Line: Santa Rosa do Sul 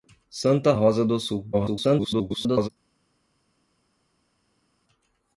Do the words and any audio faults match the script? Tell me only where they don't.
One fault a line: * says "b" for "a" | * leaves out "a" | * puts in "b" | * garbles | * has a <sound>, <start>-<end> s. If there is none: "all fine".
* garbles